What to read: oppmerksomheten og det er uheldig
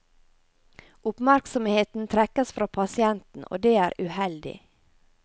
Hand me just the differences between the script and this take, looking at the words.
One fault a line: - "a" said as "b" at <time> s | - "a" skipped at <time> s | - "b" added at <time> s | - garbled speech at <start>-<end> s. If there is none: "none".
- "trekkes fra pasienten" added at 2.1 s